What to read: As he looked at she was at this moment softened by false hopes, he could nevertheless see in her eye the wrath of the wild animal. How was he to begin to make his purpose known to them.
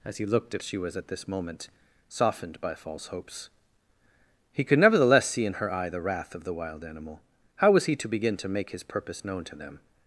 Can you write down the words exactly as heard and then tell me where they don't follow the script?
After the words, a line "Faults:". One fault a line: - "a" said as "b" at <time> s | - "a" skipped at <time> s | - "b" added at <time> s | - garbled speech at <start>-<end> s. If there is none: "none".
As he looked at she was at this moment softened by false hopes, he could nevertheless see in her eye the wrath of the wild animal. How was he to begin to make his purpose known to them.
Faults:
none